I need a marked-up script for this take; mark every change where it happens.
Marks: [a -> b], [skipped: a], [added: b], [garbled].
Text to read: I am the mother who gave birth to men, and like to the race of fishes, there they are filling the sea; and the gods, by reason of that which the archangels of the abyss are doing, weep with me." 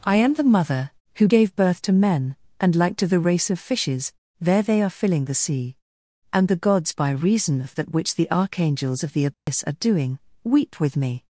I am the mother who gave birth to men, and like to the race of fishes, there they are filling the sea; and the gods, by reason of that which the archangels of the abyss are doing, weep with me."